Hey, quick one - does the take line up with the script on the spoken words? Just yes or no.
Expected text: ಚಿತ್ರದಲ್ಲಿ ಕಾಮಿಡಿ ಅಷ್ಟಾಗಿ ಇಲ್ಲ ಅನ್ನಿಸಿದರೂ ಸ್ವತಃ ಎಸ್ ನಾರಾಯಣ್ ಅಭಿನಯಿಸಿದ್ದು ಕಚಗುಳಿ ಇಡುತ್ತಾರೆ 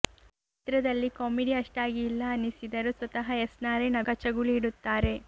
no